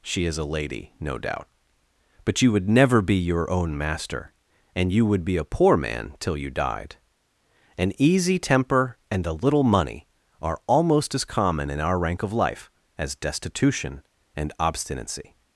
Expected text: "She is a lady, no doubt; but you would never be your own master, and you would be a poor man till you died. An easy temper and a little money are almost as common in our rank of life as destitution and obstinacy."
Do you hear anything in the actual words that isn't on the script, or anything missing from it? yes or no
no